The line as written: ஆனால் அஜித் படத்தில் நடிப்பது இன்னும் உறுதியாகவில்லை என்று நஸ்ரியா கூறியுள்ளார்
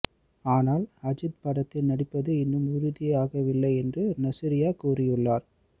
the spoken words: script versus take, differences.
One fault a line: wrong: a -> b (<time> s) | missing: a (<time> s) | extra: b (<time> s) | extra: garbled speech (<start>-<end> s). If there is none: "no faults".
no faults